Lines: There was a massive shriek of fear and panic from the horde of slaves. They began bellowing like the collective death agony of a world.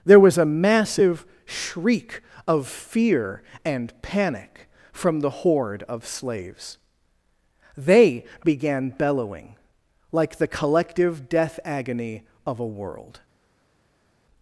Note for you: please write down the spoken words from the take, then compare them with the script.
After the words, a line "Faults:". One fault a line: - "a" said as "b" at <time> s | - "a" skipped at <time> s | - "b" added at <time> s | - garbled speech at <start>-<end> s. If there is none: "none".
There was a massive shriek of fear and panic from the horde of slaves. They began bellowing like the collective death agony of a world.
Faults:
none